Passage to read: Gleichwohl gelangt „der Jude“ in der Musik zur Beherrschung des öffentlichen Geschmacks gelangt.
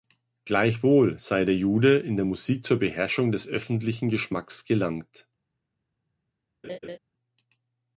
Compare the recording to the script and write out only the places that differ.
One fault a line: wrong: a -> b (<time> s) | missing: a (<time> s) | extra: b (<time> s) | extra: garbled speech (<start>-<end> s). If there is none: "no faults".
wrong: gelangt -> sei (1.2 s)